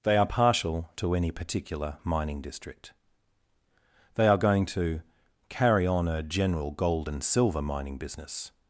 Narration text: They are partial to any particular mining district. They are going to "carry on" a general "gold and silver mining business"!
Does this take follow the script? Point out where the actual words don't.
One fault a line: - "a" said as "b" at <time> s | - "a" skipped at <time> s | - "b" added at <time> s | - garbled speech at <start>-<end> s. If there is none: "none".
none